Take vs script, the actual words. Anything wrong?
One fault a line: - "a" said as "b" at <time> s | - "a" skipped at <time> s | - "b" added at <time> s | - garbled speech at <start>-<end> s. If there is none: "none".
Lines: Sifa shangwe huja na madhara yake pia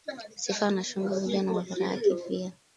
- "na" added at 0.7 s